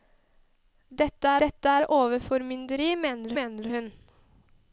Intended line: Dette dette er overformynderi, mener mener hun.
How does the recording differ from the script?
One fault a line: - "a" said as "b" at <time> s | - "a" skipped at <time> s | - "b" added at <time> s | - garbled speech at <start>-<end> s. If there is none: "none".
none